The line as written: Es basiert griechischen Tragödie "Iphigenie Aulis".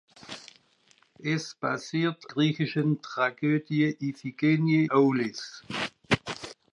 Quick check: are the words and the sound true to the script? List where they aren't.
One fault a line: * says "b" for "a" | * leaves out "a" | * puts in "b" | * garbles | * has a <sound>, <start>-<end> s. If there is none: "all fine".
all fine